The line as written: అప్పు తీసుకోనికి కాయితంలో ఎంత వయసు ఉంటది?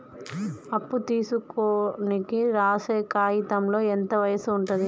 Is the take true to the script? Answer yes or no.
no